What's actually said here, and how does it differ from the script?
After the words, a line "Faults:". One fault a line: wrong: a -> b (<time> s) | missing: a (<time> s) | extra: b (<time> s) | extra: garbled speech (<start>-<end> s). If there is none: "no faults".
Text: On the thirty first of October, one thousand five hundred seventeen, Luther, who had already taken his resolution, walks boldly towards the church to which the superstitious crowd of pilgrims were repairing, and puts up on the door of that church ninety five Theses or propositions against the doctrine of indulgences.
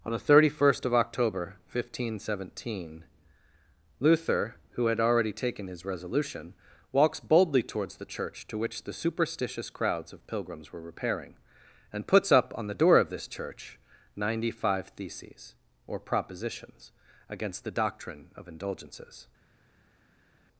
On the thirty first of October, one thousand five hundred seventeen, Luther, who had already taken his resolution, walks boldly towards the church to which the superstitious crowds of pilgrims were repairing, and puts up on the door of this church ninety five Theses or propositions against the doctrine of indulgences.
Faults:
wrong: crowd -> crowds (9.7 s)
wrong: that -> this (13.1 s)